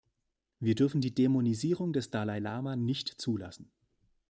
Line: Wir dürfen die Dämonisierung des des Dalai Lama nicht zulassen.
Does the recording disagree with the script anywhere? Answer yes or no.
yes